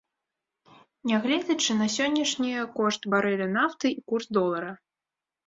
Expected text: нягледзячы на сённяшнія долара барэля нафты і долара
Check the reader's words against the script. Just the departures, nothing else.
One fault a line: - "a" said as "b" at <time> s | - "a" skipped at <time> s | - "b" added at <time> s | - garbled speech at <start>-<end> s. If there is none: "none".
- "долара" said as "кошт" at 2.8 s
- "курс" added at 4.1 s